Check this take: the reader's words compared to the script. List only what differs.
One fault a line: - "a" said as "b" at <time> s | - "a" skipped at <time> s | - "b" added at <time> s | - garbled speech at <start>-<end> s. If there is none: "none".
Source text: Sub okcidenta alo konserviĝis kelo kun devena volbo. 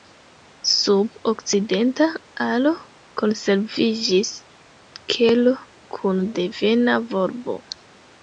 none